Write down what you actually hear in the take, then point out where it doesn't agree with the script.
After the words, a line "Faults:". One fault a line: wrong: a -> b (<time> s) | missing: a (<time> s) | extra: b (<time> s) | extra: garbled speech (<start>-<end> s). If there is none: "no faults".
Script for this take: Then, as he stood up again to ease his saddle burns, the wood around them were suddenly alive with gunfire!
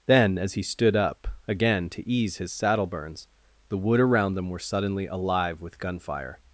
Then, as he stood up again to ease his saddle burns, the wood around them were suddenly alive with gunfire!
Faults:
no faults